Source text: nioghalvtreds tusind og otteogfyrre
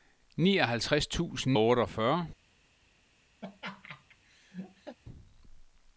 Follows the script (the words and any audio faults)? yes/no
no